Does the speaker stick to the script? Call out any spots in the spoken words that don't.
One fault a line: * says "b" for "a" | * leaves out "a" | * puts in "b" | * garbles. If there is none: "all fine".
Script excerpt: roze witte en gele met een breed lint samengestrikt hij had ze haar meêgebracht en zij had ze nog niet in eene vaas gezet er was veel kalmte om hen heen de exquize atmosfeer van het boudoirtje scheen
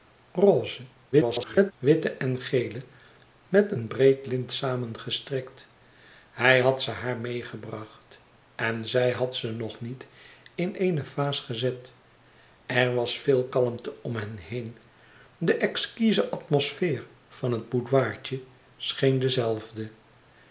* garbles